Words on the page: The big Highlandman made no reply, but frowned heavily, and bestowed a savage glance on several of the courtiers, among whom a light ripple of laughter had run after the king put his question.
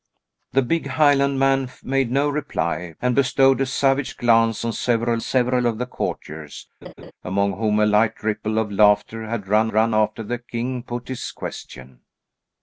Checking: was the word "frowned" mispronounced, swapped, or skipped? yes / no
yes